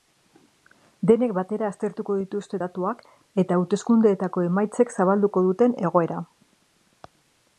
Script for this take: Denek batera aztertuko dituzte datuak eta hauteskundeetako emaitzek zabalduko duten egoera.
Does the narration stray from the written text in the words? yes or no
no